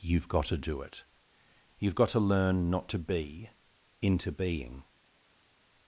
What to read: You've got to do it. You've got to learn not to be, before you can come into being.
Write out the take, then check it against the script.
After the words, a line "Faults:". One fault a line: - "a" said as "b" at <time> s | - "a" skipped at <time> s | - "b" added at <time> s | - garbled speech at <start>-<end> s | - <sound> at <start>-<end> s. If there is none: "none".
You've got to do it. You've got to learn not to be, into being.
Faults:
- "before you can come" skipped at 3.5 s